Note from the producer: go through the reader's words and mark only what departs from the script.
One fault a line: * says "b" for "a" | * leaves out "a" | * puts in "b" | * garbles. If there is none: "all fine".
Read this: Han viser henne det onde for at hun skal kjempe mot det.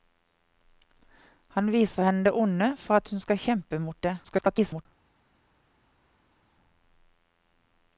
* garbles